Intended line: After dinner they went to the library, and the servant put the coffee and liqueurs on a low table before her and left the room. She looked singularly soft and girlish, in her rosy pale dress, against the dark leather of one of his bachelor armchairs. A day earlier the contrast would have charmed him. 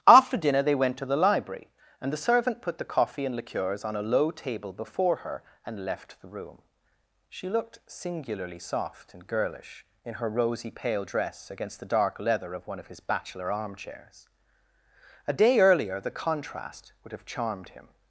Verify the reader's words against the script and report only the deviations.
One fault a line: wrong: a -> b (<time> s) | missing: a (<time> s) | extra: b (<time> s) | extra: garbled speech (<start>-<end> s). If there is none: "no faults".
no faults